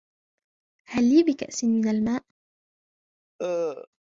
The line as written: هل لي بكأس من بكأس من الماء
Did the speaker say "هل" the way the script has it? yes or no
yes